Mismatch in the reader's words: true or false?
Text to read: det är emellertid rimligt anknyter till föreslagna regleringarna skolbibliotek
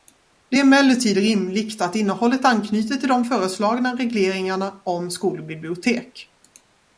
true